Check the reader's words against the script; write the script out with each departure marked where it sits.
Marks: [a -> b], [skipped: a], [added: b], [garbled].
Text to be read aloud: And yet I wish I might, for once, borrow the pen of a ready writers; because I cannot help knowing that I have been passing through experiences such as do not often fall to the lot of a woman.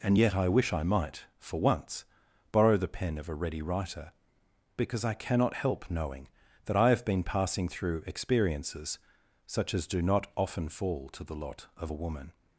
And yet I wish I might, for once, borrow the pen of a ready [writers; -> writer] because I cannot help knowing that I have been passing through experiences such as do not often fall to the lot of a woman.